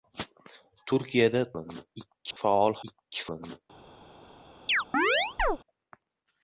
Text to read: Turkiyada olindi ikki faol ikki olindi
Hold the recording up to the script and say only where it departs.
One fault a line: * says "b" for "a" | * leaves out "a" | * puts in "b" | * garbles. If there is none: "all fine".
all fine